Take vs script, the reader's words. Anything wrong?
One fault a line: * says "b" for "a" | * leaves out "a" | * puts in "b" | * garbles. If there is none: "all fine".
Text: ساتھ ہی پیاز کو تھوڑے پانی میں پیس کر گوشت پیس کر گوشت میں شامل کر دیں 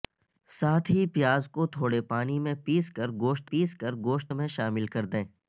all fine